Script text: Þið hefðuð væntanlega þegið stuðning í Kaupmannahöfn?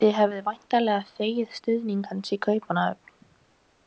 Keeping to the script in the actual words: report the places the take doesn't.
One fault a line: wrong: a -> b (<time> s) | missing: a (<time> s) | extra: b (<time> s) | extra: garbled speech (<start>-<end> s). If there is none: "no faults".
extra: hans (2.1 s)